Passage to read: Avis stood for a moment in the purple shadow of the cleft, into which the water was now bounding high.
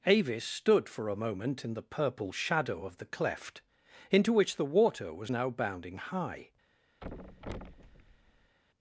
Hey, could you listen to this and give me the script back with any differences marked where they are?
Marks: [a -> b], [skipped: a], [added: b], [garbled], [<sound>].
Avis stood for a moment in the purple shadow of the cleft, into which the water was now bounding high. [thud]